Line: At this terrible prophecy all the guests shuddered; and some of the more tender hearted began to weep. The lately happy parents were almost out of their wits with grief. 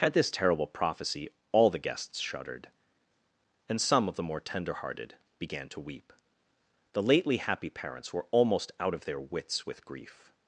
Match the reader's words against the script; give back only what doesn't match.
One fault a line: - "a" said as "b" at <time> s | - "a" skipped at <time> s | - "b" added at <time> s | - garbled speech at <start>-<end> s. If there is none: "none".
none